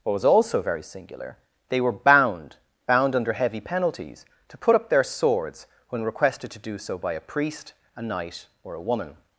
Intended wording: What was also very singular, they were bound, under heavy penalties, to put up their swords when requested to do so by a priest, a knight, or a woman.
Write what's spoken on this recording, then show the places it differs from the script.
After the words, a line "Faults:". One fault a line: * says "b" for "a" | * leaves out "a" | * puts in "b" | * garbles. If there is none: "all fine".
What was also very singular, they were bound bound, under heavy penalties, to put up their swords when requested to do so by a priest, a knight, or a woman.
Faults:
* puts in "bound"